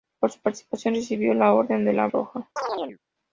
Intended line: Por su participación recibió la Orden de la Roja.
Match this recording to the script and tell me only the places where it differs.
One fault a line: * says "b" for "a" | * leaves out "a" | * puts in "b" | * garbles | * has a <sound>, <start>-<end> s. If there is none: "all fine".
* has a chirp, 2.6-3.0 s